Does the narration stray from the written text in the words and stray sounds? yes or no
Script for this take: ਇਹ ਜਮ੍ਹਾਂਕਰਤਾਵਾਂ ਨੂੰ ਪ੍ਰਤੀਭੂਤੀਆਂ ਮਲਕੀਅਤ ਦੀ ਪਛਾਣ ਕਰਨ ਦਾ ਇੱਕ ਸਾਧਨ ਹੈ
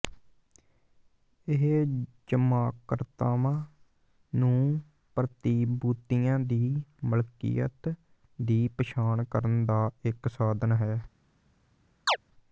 yes